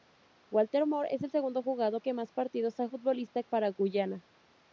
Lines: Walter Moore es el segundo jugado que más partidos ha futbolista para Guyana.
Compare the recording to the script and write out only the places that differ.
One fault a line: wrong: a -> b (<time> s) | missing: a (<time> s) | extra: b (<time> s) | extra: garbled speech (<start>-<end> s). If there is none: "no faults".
no faults